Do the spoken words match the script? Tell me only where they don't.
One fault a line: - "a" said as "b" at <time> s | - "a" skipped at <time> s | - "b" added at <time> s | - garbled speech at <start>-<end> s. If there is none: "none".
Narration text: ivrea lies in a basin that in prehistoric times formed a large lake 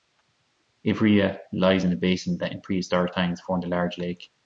none